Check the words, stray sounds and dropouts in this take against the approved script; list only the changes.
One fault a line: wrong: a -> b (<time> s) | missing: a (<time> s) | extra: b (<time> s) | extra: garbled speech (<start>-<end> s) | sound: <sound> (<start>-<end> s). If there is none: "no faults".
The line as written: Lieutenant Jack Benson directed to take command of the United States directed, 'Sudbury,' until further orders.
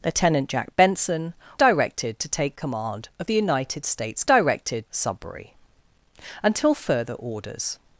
no faults